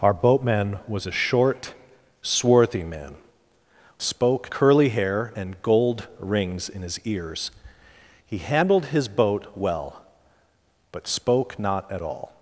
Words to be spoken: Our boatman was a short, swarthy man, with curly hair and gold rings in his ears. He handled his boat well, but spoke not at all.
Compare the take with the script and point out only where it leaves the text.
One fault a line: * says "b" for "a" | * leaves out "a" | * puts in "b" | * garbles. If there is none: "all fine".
* says "spoke" for "with"